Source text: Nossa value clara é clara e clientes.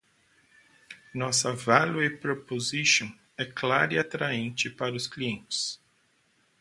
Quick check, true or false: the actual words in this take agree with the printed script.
false